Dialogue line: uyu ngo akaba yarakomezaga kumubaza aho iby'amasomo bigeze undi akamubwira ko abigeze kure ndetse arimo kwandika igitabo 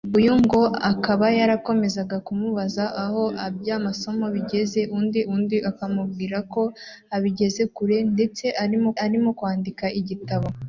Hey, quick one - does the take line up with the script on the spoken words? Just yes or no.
no